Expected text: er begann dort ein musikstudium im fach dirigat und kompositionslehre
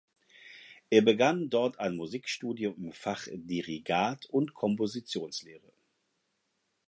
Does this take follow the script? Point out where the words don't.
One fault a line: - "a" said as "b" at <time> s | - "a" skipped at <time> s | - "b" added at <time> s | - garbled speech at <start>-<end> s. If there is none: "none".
none